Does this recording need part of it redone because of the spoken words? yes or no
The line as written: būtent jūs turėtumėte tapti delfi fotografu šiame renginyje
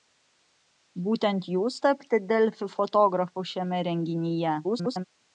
yes